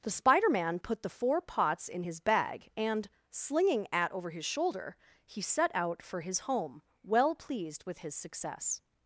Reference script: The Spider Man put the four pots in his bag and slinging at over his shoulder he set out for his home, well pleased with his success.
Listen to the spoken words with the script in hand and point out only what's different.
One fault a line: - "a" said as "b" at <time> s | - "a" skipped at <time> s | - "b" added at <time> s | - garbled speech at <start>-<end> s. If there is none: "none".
none